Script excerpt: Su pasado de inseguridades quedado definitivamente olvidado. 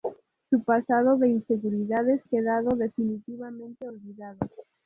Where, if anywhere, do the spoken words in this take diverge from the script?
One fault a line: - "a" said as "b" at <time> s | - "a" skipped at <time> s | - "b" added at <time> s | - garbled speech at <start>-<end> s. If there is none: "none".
none